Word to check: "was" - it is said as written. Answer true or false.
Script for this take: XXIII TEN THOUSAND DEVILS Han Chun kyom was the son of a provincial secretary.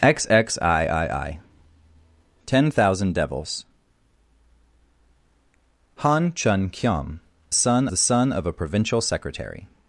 false